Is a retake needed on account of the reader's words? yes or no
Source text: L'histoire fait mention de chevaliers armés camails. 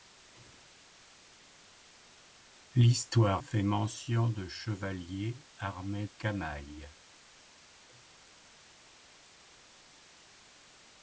no